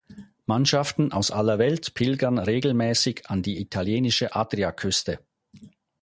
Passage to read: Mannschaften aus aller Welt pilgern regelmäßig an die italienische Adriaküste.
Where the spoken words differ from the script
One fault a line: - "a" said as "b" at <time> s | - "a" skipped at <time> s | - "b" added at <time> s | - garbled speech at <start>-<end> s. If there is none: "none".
none